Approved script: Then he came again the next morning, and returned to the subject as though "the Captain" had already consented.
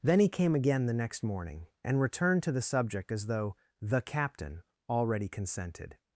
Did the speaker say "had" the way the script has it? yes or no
no